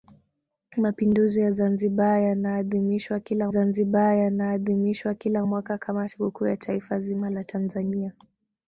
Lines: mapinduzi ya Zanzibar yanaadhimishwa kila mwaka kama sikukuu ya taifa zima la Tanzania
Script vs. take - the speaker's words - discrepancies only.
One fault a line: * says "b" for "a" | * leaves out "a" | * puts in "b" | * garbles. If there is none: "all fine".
* puts in "Zanzibar yanaadhimishwa kila"